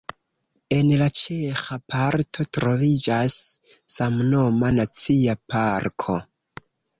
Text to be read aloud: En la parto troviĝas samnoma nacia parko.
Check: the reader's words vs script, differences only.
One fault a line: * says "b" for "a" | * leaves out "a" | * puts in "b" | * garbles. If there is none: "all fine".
* puts in "ĉeĥa"